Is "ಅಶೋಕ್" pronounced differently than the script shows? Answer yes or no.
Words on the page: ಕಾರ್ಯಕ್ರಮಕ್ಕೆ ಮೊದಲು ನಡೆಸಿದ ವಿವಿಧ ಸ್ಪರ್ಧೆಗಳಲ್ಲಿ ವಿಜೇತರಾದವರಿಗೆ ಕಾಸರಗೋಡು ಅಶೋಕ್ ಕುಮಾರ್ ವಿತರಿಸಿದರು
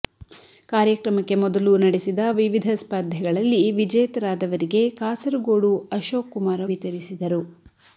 no